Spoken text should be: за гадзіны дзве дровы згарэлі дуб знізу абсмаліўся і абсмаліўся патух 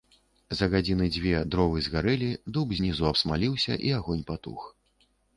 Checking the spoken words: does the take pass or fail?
fail